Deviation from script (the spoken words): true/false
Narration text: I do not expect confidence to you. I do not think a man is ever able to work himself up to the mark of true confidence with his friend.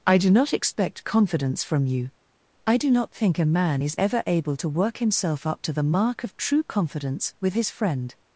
true